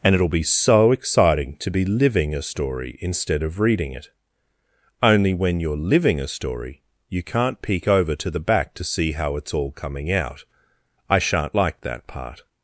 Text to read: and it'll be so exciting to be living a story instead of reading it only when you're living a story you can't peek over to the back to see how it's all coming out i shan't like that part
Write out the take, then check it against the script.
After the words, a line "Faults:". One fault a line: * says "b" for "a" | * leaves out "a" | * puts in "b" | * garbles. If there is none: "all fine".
and it'll be so exciting to be living a story instead of reading it only when you're living a story you can't peek over to the back to see how it's all coming out i shan't like that part
Faults:
all fine